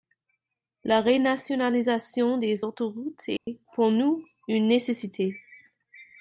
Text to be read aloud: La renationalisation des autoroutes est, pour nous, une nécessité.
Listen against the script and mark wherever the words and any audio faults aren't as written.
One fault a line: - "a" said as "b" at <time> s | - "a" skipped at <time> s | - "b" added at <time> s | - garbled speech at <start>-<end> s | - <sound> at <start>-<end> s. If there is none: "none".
- dropout at 3.4-3.5 s